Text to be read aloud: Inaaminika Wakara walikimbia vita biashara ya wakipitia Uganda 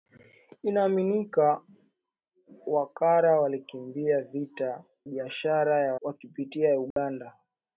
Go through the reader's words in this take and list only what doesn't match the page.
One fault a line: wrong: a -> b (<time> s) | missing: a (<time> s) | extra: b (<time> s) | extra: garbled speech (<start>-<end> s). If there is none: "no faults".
no faults